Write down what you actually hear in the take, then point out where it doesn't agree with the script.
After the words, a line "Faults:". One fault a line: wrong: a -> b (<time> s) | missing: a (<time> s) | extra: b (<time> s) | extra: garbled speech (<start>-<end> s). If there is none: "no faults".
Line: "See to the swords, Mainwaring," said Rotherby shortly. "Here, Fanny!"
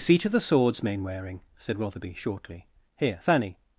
"See to the swords, Mainwaring," said Rotherby shortly. "Here, Fanny!"
Faults:
no faults